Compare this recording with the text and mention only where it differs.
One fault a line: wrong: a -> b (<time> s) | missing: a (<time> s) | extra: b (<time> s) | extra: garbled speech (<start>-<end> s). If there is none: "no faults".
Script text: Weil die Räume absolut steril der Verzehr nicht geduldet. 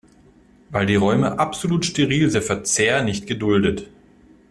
no faults